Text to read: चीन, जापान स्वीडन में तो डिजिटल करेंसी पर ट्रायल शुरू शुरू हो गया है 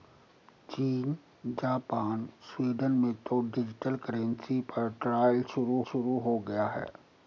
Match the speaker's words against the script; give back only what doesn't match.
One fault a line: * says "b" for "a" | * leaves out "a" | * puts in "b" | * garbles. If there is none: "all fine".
all fine